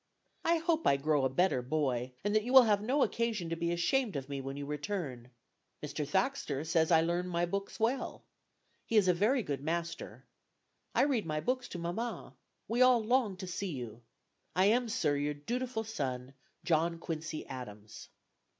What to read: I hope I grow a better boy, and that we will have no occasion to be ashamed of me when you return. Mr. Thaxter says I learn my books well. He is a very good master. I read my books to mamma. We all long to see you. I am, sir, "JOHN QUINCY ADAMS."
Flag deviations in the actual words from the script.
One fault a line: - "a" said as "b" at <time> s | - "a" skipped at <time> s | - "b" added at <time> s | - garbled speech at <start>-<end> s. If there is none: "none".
- "we" said as "you" at 2.4 s
- "your dutiful son" added at 15.2 s